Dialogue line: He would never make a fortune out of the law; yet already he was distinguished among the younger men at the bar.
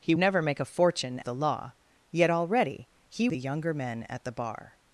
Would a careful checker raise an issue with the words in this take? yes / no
yes